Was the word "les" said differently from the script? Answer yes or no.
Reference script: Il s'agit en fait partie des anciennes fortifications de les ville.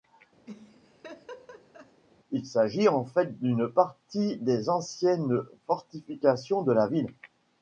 yes